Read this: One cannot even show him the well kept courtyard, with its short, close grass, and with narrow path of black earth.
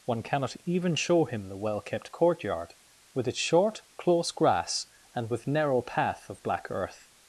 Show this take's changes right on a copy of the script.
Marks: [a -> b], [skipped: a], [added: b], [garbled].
One cannot even show him the well kept courtyard, with its short, close grass, and with narrow path of black earth.